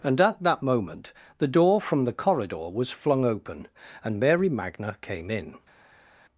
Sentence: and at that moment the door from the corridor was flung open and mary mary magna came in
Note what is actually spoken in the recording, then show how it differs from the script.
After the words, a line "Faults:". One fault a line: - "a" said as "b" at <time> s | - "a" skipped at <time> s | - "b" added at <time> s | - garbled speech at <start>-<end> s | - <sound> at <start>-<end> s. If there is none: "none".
and at that moment the door from the corridor was flung open and mary magna came in
Faults:
- "mary" skipped at 4.5 s